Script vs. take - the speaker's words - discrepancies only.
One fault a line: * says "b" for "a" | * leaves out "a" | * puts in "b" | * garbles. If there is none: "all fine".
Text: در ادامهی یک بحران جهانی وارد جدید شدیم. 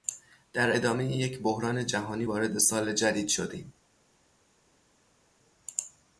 * puts in "سال"